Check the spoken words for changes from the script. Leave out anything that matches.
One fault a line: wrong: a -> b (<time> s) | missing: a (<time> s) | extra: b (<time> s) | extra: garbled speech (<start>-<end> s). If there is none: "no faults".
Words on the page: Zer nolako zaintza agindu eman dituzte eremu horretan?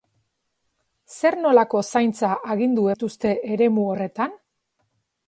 missing: eman (2.9 s)